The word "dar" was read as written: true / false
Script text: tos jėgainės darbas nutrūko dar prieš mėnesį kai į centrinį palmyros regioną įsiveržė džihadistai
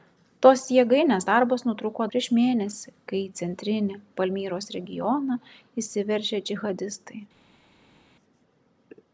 false